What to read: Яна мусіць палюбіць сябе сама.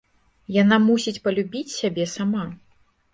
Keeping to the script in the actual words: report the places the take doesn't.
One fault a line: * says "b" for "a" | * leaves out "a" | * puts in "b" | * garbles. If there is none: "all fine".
all fine